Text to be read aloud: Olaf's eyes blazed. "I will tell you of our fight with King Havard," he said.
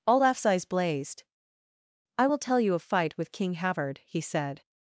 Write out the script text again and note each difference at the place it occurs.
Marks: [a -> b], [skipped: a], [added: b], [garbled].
Olaf's eyes blazed. "I will tell you of [skipped: our] fight with King Havard," he said.